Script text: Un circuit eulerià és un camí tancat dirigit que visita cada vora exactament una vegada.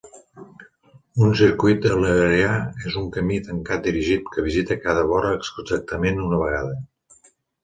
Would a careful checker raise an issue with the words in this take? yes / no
no